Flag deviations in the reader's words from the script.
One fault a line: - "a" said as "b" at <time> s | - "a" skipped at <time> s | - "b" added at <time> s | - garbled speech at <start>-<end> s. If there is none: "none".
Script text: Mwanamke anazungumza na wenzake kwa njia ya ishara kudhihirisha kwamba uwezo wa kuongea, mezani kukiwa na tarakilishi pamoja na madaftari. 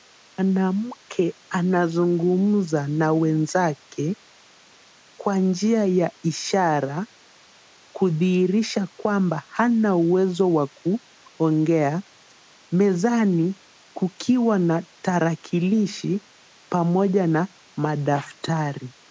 - "hana" added at 9.5 s